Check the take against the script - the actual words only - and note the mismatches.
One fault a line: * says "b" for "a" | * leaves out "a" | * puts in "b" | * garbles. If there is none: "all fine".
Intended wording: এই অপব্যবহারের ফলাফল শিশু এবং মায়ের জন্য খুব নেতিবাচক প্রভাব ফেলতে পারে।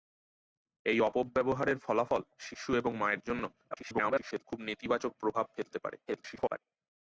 * garbles
* garbles